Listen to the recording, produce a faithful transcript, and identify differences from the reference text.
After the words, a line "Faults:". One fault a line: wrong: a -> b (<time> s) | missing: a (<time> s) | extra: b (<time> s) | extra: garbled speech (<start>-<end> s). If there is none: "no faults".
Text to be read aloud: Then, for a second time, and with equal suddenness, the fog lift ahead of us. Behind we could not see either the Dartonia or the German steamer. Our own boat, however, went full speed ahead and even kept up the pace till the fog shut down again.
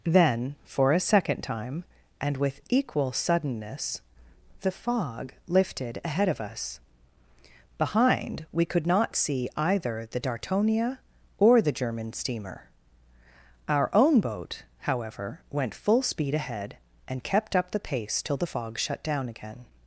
Then, for a second time, and with equal suddenness, the fog lifted ahead of us. Behind we could not see either the Dartonia or the German steamer. Our own boat, however, went full speed ahead and kept up the pace till the fog shut down again.
Faults:
wrong: lift -> lifted (5.5 s)
missing: even (17.2 s)